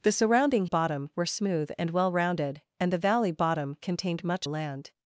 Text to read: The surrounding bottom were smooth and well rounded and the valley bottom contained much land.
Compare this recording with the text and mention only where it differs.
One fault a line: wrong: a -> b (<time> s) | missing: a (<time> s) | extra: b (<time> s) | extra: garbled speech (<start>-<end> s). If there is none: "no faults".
no faults